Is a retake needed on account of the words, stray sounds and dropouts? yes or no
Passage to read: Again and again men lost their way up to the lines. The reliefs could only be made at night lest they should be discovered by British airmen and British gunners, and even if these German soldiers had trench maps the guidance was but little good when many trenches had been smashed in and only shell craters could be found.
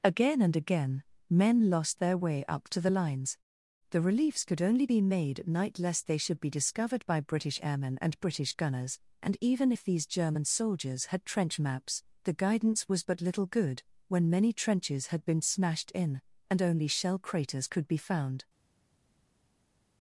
no